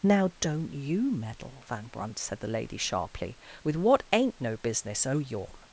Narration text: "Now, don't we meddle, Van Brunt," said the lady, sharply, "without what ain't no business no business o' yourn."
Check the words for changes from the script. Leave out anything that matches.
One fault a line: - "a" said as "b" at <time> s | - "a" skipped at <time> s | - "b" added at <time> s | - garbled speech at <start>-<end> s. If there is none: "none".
- "we" said as "you" at 0.7 s
- "without" said as "with" at 3.6 s
- "no business" skipped at 5.0 s